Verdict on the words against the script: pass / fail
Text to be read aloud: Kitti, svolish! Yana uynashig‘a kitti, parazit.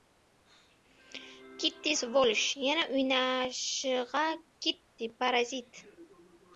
pass